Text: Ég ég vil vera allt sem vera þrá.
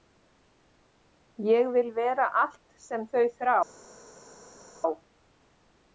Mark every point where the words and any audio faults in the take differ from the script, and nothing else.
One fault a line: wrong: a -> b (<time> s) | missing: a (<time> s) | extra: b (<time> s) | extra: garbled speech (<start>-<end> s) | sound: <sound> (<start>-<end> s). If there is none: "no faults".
missing: ég (1.7 s)
wrong: vera -> þau (3.1 s)